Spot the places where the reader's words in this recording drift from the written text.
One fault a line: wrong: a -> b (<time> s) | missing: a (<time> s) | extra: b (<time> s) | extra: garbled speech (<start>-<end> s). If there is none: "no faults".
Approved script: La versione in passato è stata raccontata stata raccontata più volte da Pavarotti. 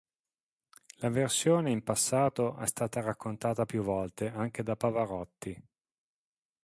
missing: stata raccontata (3.7 s)
extra: anche (4.3 s)